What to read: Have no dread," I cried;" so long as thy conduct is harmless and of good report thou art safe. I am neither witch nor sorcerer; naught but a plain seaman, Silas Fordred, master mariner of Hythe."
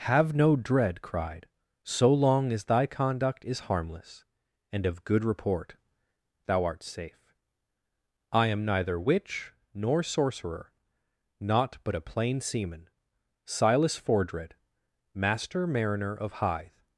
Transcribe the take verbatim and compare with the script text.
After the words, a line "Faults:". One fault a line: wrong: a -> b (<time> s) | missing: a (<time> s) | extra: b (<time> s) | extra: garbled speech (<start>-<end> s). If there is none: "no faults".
Have no dread," cried;" so long as thy conduct is harmless and of good report thou art safe. I am neither witch nor sorcerer; naught but a plain seaman, Silas Fordred, master mariner of Hythe."
Faults:
missing: I (1.0 s)